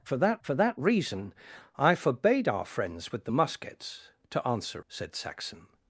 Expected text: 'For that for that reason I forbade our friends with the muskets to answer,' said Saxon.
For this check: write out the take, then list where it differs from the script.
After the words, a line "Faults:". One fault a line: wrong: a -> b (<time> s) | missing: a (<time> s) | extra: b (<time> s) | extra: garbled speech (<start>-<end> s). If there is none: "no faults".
'For that for that reason I forbade our friends with the muskets to answer,' said Saxon.
Faults:
no faults